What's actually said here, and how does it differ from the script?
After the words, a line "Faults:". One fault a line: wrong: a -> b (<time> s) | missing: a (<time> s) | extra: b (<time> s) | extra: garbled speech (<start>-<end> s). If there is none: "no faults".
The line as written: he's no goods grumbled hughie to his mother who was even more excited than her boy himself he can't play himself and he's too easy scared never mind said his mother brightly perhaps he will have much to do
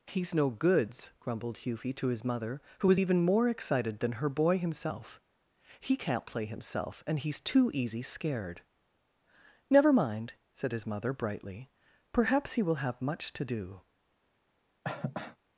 he's no goods grumbled hughie to his mother who was even more excited than her boy himself he can't play himself and he's too easy scared never mind said his mother brightly perhaps he will have much to do
Faults:
no faults